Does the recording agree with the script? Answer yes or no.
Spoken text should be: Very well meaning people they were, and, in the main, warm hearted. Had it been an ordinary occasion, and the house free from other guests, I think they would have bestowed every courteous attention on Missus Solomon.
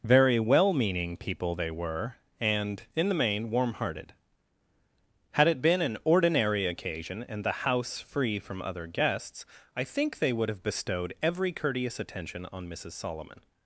yes